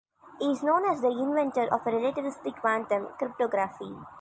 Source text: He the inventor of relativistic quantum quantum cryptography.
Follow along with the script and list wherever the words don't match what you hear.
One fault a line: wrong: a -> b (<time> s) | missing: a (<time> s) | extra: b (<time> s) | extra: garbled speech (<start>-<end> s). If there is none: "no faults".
extra: is known as (0.5 s)
missing: quantum (3.1 s)